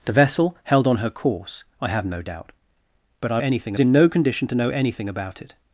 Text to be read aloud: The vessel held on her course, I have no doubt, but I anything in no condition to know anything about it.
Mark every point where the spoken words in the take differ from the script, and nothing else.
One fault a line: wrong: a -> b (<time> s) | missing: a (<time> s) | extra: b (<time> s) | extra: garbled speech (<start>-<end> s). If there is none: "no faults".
no faults